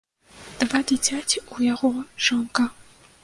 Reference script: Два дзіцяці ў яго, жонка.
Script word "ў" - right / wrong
right